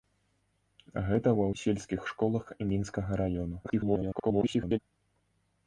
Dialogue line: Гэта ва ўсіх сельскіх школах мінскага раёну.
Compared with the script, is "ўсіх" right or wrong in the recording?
wrong